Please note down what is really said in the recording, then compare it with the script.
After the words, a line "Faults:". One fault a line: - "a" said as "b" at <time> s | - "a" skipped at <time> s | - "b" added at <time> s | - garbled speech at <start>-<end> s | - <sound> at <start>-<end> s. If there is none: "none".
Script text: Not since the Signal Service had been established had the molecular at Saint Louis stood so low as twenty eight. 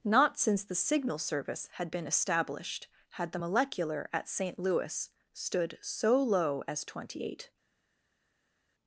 Not since the Signal Service had been established had the molecular at Saint Louis stood so low as twenty eight.
Faults:
none